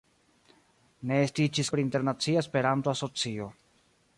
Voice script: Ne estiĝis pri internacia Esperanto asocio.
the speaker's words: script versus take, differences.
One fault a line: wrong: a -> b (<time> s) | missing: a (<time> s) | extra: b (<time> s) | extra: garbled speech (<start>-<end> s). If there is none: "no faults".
no faults